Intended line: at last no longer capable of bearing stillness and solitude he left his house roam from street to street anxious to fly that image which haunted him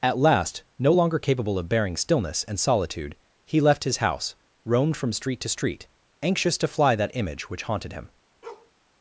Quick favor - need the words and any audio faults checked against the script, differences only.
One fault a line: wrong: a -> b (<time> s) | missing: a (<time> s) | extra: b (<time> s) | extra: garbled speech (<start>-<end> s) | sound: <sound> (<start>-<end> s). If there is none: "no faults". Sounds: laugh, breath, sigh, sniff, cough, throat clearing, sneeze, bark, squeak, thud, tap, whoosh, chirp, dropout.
wrong: roam -> roamed (4.7 s)
sound: bark (8.4-8.7 s)